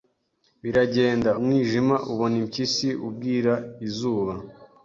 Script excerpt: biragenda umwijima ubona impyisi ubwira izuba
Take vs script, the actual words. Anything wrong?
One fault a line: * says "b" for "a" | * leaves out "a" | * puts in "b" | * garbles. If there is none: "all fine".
all fine